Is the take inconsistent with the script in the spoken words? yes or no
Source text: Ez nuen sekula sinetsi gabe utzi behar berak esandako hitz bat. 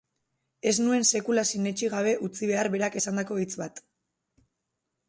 no